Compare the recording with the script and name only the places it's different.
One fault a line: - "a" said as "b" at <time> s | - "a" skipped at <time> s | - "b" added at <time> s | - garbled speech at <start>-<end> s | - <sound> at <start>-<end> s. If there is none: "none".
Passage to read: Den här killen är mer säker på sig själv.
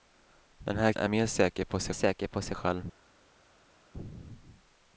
- "killen" skipped at 0.9 s
- "säker på sig" added at 1.9 s